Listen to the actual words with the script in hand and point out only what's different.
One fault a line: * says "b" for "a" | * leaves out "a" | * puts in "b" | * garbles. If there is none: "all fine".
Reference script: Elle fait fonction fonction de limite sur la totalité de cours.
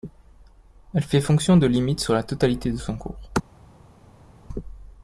* leaves out "fonction"
* puts in "son"